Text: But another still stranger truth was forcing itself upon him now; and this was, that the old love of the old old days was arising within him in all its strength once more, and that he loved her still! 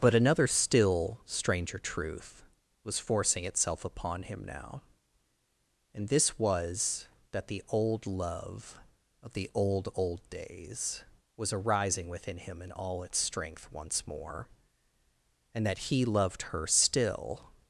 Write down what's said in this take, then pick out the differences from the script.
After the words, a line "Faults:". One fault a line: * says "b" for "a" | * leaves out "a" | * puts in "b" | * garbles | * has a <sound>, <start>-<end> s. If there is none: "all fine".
But another still stranger truth was forcing itself upon him now; and this was, that the old love of the old old days was arising within him in all its strength once more, and that he loved her still!
Faults:
all fine